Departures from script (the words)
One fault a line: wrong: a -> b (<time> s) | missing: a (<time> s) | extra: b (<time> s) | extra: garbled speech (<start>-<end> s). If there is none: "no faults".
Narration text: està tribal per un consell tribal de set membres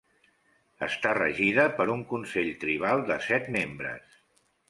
wrong: tribal -> regida (1.2 s)